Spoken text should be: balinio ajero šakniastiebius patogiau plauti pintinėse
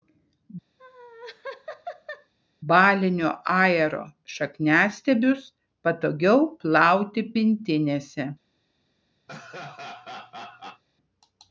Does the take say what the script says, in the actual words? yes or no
yes